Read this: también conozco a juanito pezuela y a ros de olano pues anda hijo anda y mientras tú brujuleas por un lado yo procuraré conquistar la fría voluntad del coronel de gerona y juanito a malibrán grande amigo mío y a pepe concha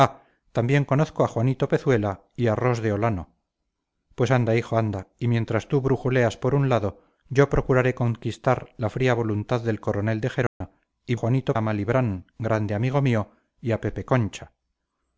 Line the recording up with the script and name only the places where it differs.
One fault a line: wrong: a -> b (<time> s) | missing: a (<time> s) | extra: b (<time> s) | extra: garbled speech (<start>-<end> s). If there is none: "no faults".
no faults